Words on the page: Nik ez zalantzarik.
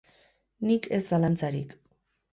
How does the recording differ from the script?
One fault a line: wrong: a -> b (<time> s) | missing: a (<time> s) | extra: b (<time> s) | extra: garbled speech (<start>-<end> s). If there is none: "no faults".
no faults